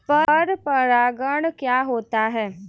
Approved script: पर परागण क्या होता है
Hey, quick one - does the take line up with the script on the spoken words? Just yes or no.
yes